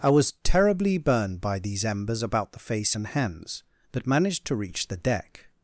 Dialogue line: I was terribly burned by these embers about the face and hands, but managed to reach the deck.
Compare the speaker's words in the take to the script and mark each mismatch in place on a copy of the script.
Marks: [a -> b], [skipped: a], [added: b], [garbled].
I was terribly burned by these embers about the face and hands, but managed to reach the deck.